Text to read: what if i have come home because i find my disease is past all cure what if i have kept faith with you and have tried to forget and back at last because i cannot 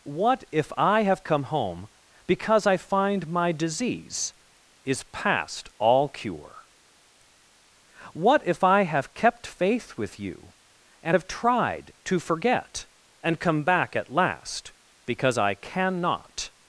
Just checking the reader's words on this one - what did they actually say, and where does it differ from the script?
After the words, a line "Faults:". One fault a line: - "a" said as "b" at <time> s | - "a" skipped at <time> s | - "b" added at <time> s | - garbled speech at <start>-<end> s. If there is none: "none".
what if i have come home because i find my disease is past all cure what if i have kept faith with you and have tried to forget and come back at last because i cannot
Faults:
- "come" added at 13.4 s